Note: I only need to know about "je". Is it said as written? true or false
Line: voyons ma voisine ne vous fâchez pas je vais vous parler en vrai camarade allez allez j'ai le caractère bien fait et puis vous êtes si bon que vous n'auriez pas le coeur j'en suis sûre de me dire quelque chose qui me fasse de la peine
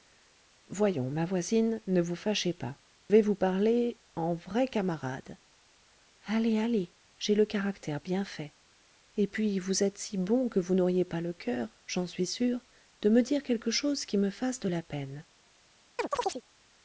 false